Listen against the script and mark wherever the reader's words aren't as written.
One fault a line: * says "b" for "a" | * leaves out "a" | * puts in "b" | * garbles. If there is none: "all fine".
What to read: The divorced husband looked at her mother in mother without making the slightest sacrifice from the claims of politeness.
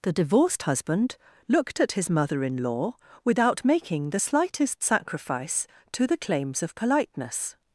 * says "his" for "her"
* says "law" for "mother"
* says "to" for "from"